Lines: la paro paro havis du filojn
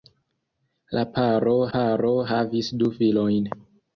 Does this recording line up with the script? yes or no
yes